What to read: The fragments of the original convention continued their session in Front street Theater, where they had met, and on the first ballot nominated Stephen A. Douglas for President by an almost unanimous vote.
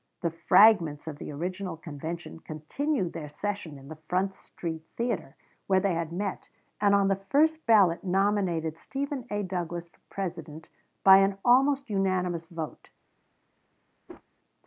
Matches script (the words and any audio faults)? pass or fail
fail